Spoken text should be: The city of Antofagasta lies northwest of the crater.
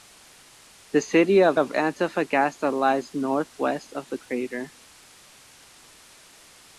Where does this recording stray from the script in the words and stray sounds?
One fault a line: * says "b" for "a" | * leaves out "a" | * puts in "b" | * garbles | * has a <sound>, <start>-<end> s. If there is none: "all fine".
* puts in "of"